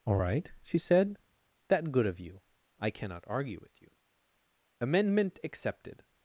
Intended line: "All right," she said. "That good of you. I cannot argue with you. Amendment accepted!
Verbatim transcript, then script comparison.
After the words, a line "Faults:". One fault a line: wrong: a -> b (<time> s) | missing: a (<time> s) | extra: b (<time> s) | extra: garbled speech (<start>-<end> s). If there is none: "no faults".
"All right," she said. "That good of you. I cannot argue with you. Amendment accepted!
Faults:
no faults